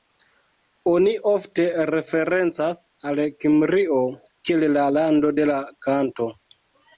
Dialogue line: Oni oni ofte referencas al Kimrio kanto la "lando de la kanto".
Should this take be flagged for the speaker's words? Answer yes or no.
yes